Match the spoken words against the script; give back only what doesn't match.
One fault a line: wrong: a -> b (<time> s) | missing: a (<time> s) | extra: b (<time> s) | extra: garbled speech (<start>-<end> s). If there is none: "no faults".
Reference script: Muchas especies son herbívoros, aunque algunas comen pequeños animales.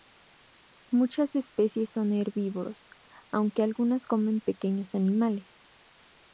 no faults